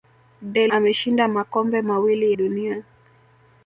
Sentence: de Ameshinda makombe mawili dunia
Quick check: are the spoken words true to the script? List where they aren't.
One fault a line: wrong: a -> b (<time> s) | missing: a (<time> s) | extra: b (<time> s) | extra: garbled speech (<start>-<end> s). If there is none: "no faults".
no faults